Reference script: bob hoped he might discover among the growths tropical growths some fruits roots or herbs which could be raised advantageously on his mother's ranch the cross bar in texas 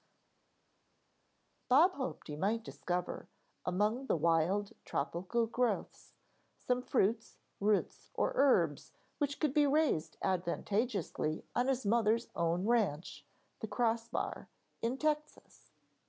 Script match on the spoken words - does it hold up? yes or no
no